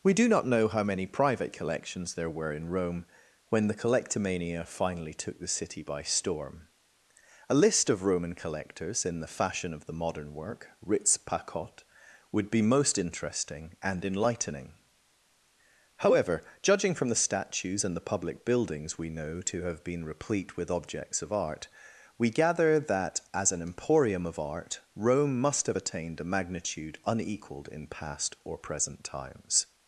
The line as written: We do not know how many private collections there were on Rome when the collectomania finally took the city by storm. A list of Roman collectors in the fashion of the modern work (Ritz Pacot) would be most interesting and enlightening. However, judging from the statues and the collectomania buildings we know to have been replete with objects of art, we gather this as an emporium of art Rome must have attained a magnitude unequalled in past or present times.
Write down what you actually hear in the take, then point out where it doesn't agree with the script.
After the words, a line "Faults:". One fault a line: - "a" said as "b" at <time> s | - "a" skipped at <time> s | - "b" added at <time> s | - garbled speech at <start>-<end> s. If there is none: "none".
We do not know how many private collections there were in Rome when the collectomania finally took the city by storm. A list of Roman collectors in the fashion of the modern work (Ritz Pacot) would be most interesting and enlightening. However, judging from the statues and the public buildings we know to have been replete with objects of art, we gather that as an emporium of art Rome must have attained a magnitude unequalled in past or present times.
Faults:
- "on" said as "in" at 2.5 s
- "collectomania" said as "public" at 18.1 s
- "this" said as "that" at 22.8 s